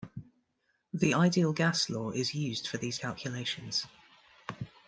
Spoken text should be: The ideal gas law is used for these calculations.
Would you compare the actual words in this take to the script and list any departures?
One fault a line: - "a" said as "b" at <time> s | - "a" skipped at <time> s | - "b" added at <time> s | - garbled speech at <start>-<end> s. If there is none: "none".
none